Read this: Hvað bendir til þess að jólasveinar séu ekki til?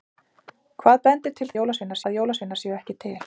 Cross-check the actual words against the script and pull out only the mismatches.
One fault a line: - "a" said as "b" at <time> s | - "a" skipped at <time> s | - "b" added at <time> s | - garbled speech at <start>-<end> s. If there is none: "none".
- "þess" said as "jólasveinar" at 1.6 s